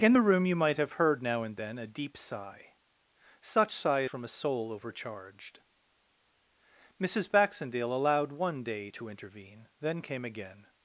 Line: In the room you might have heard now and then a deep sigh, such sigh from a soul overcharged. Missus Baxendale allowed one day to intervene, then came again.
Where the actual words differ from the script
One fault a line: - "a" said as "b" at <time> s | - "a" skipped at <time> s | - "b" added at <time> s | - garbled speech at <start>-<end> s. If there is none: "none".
none